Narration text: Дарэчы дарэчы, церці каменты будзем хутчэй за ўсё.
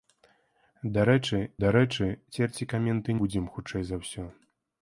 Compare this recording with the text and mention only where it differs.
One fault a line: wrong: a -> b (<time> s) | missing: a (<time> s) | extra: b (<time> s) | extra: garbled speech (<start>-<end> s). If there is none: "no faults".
no faults